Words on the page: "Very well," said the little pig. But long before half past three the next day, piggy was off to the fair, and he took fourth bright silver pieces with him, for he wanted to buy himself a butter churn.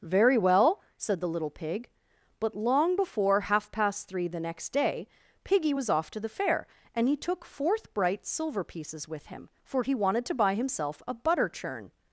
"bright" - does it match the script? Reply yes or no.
yes